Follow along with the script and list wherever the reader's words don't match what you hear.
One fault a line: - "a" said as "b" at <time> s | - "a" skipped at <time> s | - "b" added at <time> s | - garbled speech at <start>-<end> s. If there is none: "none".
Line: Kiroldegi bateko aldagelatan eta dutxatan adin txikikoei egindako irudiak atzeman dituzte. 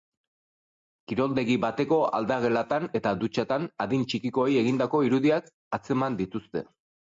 none